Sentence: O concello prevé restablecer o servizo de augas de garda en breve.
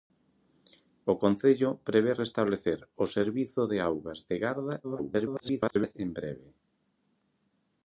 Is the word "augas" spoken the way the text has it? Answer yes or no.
yes